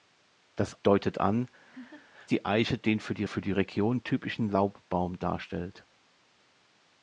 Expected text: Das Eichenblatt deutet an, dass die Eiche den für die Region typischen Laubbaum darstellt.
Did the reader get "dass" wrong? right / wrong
wrong